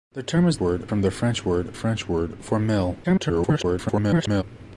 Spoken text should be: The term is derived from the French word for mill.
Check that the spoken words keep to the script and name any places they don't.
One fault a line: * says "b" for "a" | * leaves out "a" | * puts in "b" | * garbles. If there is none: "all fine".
* says "word" for "derived"
* puts in "French word"
* garbles